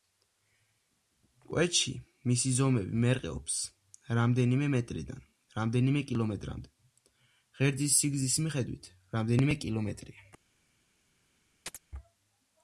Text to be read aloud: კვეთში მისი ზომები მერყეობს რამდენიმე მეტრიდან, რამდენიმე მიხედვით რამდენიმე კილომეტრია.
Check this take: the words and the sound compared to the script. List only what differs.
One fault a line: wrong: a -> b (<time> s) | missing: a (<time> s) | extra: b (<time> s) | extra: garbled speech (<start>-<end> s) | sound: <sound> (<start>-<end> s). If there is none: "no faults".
extra: კილომეტრამდე ღერძის სიგრძის (6.1 s)
sound: chirp (11.7-11.8 s)